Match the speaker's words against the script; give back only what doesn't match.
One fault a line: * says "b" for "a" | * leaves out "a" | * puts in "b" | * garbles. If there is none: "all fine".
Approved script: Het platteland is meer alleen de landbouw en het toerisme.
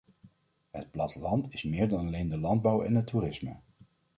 * puts in "dan"